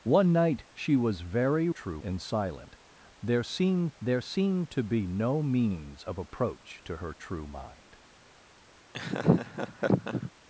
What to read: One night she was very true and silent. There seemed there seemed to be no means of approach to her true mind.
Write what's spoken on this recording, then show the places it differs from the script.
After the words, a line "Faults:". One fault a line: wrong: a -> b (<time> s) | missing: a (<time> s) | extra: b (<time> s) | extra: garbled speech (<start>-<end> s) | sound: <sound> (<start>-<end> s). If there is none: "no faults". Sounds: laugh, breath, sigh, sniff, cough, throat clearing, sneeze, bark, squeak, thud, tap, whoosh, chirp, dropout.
One night she was very true and silent. There seemed there seemed to be no means of approach to her true mind.
Faults:
sound: laugh (8.9-10.3 s)